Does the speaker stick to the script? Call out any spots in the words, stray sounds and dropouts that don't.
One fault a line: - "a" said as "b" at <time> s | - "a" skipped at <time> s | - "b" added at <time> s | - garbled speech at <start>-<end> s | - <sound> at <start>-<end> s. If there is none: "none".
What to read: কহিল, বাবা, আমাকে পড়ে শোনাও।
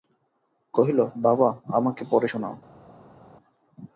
none